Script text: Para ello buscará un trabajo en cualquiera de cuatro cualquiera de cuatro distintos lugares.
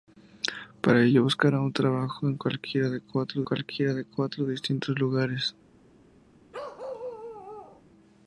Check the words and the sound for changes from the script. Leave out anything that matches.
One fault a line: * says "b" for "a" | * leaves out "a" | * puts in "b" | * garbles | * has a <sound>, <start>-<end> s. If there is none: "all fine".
* has a bark, 6.5-7.8 s